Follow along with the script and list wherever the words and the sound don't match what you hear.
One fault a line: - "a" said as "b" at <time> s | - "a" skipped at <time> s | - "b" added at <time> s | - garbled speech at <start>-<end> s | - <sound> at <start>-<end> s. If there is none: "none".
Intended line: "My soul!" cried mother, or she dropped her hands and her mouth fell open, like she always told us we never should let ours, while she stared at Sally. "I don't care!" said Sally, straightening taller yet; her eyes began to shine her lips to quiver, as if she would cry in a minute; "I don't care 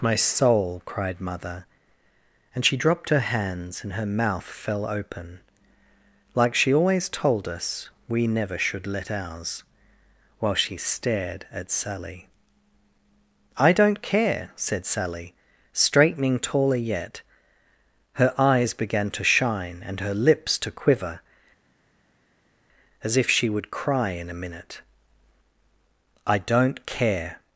- "or" said as "and" at 2.5 s
- "and" added at 19.9 s